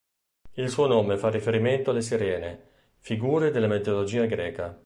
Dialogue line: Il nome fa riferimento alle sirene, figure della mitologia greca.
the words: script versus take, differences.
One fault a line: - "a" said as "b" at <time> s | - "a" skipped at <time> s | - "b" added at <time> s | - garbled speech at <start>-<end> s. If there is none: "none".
- "suo" added at 0.7 s